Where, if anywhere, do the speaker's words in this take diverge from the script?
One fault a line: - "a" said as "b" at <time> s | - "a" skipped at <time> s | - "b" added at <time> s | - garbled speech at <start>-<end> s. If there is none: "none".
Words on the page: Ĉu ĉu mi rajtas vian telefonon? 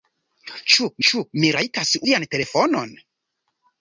none